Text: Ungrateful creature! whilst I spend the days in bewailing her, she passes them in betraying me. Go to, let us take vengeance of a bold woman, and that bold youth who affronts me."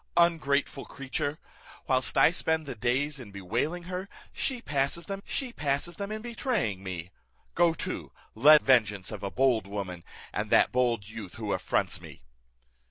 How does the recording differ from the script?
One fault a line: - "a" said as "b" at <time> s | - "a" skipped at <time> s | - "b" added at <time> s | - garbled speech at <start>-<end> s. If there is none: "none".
- "she passes them" added at 5.2 s
- "us take" skipped at 8.6 s